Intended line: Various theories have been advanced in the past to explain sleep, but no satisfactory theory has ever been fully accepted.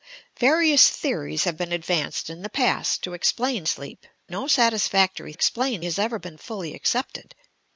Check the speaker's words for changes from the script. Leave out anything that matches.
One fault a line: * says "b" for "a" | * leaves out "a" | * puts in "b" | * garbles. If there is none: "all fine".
* leaves out "but"
* says "explain" for "theory"